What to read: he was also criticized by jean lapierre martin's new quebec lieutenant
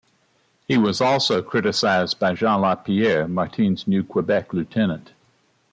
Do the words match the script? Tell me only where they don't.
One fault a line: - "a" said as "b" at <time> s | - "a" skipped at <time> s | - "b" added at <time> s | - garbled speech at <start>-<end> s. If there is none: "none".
none